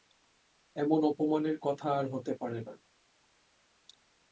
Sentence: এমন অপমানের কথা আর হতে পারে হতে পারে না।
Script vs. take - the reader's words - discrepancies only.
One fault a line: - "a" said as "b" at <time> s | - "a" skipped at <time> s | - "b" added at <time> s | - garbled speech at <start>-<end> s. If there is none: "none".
- "হতে পারে" skipped at 2.6 s